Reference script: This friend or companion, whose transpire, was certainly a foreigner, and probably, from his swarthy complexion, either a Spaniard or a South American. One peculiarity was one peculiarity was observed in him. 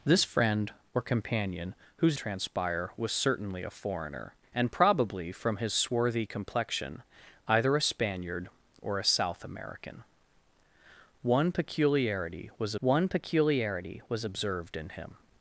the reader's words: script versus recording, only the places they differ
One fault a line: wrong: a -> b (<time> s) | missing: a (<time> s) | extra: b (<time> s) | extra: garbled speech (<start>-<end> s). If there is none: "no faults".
no faults